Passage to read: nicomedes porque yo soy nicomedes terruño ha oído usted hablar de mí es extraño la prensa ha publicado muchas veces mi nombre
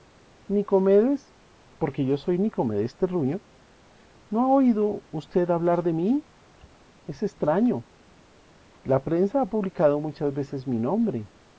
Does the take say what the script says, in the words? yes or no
no